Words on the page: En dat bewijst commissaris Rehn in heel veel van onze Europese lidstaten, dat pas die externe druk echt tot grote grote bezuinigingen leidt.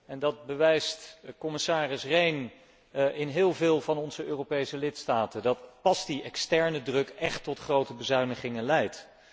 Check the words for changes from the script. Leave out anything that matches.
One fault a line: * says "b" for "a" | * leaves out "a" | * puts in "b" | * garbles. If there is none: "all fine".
* leaves out "grote"